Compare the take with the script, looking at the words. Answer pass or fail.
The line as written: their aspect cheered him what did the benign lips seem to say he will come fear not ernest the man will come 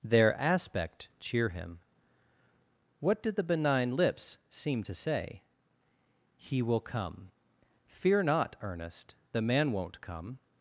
fail